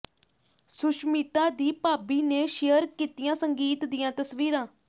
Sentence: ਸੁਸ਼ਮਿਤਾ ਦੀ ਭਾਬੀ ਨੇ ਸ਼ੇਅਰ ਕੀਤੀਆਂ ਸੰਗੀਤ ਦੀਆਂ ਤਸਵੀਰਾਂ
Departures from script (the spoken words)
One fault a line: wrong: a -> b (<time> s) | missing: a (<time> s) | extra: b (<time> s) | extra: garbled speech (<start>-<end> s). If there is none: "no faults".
no faults